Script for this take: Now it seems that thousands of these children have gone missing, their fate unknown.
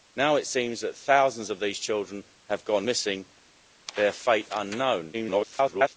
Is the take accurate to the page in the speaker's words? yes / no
no